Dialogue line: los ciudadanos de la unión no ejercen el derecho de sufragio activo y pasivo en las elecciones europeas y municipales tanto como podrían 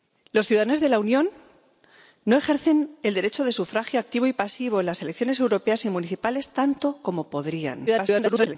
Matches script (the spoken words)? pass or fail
fail